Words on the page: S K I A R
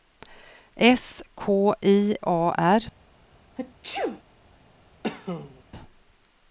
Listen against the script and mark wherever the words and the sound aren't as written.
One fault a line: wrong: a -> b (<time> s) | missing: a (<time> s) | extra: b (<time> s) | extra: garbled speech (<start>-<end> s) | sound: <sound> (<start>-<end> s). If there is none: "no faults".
sound: sneeze (3.6-4.2 s)
sound: cough (5.0-5.6 s)